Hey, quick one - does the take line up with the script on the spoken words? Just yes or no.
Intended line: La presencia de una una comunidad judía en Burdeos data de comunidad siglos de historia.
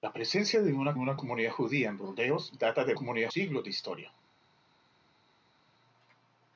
yes